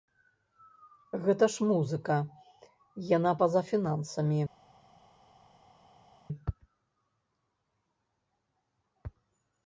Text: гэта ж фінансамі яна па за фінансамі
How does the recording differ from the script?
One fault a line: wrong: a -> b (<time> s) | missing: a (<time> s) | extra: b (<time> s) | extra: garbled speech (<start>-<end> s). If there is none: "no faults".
wrong: фінансамі -> музыка (1.7 s)